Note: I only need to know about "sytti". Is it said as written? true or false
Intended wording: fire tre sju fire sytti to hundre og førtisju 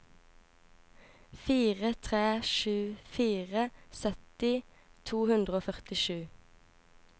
true